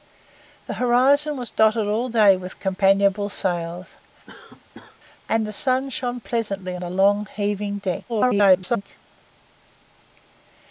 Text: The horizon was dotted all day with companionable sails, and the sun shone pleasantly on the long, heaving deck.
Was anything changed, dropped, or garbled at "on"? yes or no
yes